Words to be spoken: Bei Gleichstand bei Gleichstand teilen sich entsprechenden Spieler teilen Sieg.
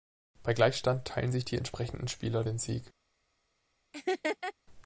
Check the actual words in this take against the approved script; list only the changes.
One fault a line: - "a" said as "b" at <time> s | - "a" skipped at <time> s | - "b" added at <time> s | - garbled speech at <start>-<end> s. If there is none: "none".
- "bei Gleichstand" skipped at 1.1 s
- "die" added at 1.4 s
- "teilen" said as "den" at 2.4 s